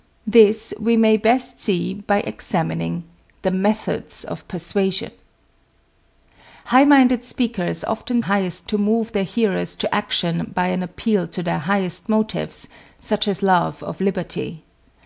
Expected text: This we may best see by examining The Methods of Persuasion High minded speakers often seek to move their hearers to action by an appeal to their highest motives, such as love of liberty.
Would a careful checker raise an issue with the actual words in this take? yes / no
yes